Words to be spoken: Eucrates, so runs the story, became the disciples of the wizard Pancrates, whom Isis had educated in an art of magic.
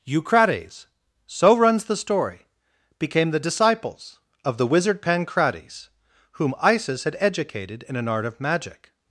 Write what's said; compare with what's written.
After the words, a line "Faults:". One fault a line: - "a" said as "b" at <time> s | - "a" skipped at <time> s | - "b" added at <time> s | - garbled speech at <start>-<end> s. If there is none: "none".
Eucrates, so runs the story, became the disciples of the wizard Pancrates, whom Isis had educated in an art of magic.
Faults:
none